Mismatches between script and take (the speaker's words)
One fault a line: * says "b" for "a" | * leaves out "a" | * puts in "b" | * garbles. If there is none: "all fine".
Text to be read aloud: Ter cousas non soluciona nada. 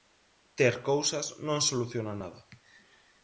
all fine